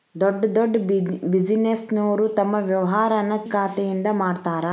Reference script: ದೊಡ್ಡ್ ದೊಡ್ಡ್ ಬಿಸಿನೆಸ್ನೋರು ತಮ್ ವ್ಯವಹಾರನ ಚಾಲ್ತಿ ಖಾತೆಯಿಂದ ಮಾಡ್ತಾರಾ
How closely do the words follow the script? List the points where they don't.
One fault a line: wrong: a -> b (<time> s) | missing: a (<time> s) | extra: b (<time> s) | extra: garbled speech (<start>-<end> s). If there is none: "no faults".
missing: ಚಾಲ್ತಿ (3.3 s)